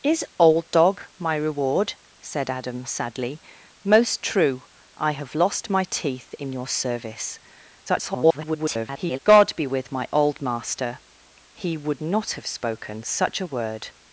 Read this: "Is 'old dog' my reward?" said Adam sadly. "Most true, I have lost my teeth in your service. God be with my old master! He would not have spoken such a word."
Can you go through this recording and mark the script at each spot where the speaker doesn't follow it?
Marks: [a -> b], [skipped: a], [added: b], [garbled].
"Is 'old dog' my reward?" said Adam sadly. "Most true, I have lost my teeth in your service. [garbled] God be with my old master! He would not have spoken such a word."